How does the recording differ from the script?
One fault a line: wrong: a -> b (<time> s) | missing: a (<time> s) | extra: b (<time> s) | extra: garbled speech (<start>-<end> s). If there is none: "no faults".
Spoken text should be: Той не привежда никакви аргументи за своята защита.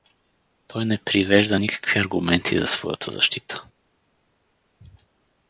no faults